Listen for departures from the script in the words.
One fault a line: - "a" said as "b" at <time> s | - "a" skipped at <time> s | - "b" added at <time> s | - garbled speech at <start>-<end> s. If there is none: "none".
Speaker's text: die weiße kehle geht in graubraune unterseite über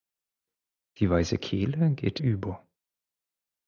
- "in graubraune unterseite" skipped at 2.2 s